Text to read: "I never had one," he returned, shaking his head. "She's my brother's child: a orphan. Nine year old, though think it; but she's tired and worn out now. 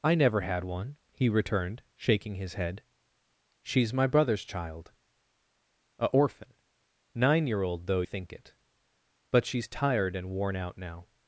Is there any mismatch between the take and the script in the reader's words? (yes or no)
no